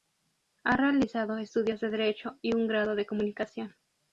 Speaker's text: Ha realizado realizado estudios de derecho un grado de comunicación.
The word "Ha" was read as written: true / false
true